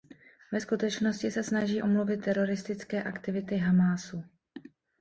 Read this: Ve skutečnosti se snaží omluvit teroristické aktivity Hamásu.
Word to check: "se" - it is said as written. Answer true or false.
true